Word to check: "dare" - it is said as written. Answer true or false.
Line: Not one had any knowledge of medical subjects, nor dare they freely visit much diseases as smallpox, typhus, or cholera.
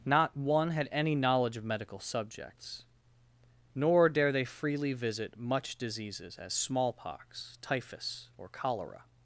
true